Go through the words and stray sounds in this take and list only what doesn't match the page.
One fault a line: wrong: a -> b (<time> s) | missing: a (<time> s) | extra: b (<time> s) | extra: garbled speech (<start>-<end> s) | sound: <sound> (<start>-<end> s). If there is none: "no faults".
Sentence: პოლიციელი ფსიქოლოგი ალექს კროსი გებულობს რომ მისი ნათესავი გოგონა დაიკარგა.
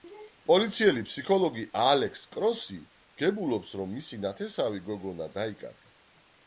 no faults